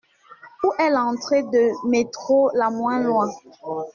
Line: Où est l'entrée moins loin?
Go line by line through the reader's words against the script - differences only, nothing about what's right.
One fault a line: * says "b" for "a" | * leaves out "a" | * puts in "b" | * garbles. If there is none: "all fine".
* puts in "de métro la"